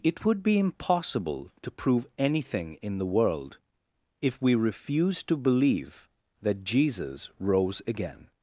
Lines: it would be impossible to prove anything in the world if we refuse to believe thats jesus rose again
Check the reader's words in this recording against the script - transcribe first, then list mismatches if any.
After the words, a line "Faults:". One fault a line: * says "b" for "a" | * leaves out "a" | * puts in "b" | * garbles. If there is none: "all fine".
it would be impossible to prove anything in the world if we refuse to believe that jesus rose again
Faults:
* says "that" for "thats"